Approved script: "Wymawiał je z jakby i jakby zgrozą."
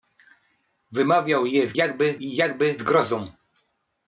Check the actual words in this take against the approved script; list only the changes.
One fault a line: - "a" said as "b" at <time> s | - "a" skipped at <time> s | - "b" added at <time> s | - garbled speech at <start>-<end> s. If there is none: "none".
none